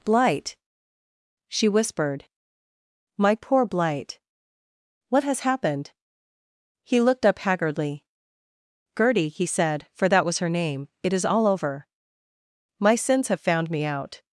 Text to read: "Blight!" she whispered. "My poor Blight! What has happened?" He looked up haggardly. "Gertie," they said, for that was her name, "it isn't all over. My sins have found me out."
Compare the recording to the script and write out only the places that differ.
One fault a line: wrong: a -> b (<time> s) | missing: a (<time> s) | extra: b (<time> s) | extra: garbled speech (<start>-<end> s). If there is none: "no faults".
wrong: they -> he (9.3 s)
wrong: isn't -> is (11.1 s)